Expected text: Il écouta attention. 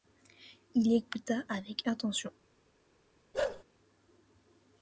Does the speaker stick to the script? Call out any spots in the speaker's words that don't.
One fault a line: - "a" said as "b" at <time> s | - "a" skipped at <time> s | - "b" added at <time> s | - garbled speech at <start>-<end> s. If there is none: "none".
- "avec" added at 1.5 s